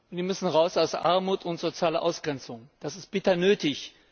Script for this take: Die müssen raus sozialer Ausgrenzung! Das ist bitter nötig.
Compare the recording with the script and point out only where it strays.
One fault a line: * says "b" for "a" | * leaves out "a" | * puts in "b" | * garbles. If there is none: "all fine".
* puts in "aus Armut und"